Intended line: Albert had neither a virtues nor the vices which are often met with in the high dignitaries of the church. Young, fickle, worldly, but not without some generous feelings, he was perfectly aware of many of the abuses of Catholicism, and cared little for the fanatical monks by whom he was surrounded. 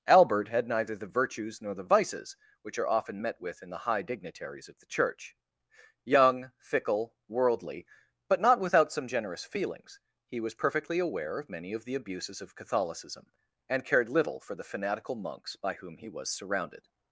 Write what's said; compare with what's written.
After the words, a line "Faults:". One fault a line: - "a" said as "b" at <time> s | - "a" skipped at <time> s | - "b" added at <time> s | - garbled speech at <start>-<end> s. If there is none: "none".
Albert had neither the virtues nor the vices which are often met with in the high dignitaries of the church. Young, fickle, worldly, but not without some generous feelings, he was perfectly aware of many of the abuses of Catholicism, and cared little for the fanatical monks by whom he was surrounded.
Faults:
- "a" said as "the" at 0.9 s